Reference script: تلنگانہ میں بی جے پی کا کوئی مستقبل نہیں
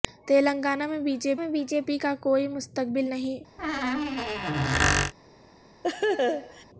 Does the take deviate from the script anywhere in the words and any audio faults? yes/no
yes